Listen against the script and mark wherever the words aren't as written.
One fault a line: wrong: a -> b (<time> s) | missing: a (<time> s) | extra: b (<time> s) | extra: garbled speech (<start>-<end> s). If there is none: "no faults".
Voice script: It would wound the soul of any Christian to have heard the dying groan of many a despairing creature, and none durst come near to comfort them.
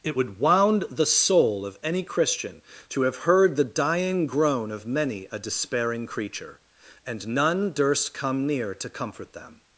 no faults